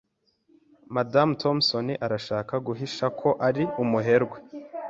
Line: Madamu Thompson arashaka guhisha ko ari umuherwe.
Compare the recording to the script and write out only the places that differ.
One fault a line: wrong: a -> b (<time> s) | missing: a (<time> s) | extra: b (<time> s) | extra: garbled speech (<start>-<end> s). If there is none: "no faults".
no faults